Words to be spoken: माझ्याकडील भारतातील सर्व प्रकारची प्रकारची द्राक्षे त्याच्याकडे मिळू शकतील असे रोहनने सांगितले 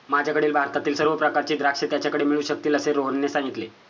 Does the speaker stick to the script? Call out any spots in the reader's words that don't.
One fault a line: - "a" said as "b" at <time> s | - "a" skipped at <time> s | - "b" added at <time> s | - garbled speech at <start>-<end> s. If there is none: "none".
- "प्रकारची" skipped at 1.5 s